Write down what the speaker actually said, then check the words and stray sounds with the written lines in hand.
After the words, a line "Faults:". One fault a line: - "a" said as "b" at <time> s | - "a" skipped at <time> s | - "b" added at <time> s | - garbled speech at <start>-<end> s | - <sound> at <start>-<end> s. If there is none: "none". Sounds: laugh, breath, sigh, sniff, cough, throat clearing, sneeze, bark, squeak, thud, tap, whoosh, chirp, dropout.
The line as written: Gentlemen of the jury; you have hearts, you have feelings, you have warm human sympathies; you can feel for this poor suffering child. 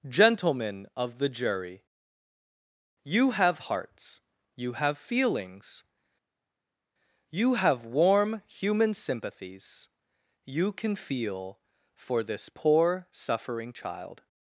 Gentlemen of the jury; you have hearts, you have feelings, you have warm human sympathies; you can feel for this poor suffering child.
Faults:
none